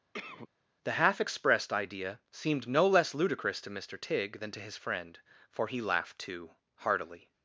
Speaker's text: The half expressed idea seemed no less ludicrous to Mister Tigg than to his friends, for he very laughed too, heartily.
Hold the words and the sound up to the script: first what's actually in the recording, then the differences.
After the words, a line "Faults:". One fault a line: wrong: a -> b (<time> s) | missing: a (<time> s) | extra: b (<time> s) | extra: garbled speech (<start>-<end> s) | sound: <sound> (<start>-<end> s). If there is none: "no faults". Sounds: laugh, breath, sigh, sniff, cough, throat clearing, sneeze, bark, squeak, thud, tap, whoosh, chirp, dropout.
The half expressed idea seemed no less ludicrous to Mister Tigg than to his friend, for he laughed too, heartily.
Faults:
sound: cough (0.1-0.5 s)
wrong: friends -> friend (4.8 s)
missing: very (5.8 s)